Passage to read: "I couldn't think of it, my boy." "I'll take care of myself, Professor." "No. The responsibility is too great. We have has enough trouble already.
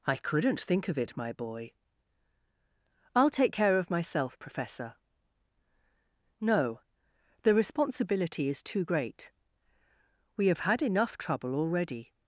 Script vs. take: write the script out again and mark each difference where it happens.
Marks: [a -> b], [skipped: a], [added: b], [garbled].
"I couldn't think of it, my boy." "I'll take care of myself, Professor." "No. The responsibility is too great. We have [has -> had] enough trouble already.